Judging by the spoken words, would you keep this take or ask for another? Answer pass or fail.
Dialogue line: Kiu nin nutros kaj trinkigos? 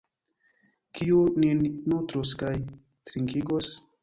pass